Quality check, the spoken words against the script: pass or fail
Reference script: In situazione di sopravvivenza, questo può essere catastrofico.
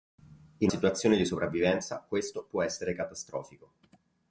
pass